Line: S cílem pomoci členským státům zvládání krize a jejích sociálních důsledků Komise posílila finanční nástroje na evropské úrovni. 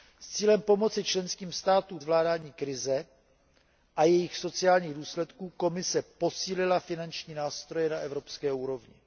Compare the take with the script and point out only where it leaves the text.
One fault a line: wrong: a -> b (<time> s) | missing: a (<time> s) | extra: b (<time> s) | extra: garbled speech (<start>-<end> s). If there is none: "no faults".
no faults